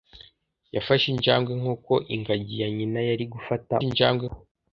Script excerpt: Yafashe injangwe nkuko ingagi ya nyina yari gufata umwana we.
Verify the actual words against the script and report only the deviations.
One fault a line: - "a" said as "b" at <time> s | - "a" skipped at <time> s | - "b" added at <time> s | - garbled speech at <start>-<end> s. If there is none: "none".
- "umwana" said as "injangwe" at 3.9 s